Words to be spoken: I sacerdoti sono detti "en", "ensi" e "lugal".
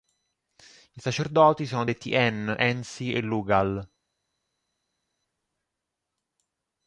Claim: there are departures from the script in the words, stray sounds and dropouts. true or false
false